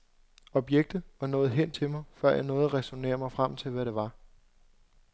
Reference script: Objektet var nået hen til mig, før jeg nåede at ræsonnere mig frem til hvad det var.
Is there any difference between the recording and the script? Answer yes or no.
no